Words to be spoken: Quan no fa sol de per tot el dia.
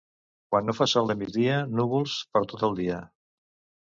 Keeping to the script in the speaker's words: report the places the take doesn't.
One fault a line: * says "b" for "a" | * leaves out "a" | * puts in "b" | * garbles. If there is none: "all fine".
* puts in "migdia núvols"